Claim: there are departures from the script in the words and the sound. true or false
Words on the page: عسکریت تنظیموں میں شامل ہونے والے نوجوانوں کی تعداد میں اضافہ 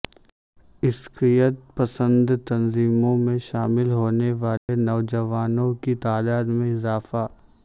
true